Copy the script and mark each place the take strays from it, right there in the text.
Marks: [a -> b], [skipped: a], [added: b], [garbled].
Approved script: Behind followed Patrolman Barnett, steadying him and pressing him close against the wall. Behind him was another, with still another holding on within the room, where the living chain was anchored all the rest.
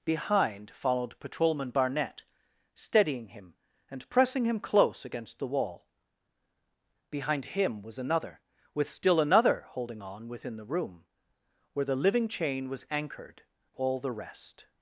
Behind followed Patrolman Barnett, steadying him and pressing him close against the wall. Behind him was another, with still another holding on within the room, where the living chain was anchored all the rest.